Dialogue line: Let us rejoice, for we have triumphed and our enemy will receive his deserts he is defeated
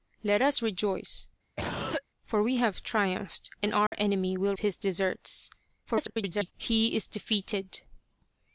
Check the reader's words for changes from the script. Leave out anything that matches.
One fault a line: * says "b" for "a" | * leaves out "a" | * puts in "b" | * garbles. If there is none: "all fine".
* leaves out "receive"
* garbles